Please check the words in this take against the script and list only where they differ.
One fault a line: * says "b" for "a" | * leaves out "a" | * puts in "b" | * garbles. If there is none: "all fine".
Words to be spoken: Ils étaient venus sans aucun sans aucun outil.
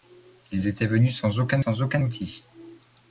all fine